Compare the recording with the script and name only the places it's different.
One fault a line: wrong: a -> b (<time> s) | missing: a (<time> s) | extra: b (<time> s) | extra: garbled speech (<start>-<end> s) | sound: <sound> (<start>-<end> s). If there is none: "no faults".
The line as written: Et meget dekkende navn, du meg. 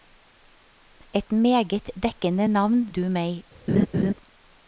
sound: laugh (3.7-4.1 s)